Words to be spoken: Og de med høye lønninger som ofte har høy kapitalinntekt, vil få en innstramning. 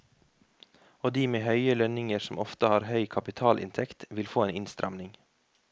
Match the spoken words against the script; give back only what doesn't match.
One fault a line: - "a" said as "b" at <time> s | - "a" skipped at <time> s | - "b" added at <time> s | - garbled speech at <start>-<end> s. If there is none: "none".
none